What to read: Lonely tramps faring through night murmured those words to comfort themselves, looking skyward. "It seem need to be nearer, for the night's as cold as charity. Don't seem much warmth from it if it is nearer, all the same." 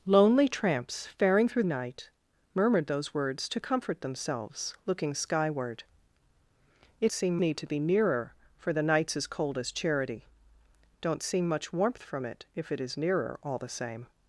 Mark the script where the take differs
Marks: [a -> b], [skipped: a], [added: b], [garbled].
Lonely tramps faring through night murmured those words to comfort themselves, looking skyward. "It seem need to be nearer, for the night's as cold as charity. Don't seem much warmth from it if it is nearer, all the same."